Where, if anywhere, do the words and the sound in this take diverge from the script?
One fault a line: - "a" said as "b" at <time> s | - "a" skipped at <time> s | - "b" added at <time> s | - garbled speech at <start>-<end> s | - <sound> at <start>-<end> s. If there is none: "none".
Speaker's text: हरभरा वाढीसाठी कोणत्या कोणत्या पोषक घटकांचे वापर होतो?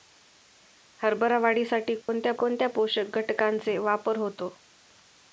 - dropout at 2.0-2.1 s